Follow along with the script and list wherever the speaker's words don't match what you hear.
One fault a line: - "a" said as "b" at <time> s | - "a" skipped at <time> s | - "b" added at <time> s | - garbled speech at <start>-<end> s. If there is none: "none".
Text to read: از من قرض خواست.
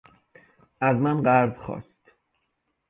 none